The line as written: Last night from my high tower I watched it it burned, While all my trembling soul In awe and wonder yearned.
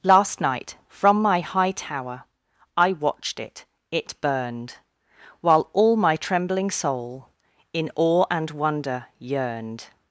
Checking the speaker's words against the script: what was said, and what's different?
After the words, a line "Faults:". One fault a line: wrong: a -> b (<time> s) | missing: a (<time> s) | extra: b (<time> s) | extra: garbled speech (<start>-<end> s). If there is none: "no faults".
Last night from my high tower I watched it it burned, While all my trembling soul In awe and wonder yearned.
Faults:
no faults